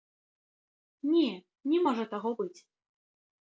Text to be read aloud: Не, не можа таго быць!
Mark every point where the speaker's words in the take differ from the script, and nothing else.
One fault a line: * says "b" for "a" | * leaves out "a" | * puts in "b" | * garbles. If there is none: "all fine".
all fine